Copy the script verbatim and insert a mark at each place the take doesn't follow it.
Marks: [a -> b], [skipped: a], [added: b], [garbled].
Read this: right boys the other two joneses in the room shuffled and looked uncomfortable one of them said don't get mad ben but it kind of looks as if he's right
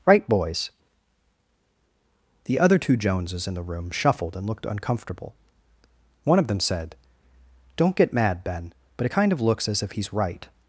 right boys the other two joneses in the room shuffled and looked uncomfortable one of them said don't get mad ben but it kind of looks as if he's right